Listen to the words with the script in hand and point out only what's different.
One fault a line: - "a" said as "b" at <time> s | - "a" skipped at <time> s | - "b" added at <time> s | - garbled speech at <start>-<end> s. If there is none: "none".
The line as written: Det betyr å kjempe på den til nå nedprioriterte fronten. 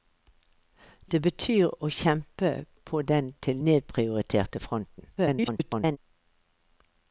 - "nå" skipped at 3.6 s
- garbled speech at 5.2-6.0 s